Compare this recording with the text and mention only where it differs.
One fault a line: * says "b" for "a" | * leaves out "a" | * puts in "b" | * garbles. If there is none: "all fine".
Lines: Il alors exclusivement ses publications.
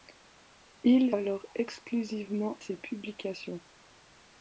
all fine